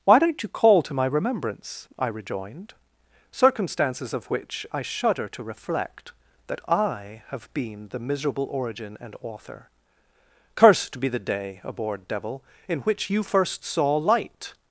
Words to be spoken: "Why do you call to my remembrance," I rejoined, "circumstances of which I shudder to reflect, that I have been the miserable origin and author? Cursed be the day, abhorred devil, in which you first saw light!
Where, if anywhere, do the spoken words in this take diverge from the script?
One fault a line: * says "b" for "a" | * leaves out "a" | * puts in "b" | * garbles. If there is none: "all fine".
* says "don't" for "do"